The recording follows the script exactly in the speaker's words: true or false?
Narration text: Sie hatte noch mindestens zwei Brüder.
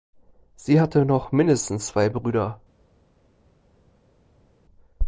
true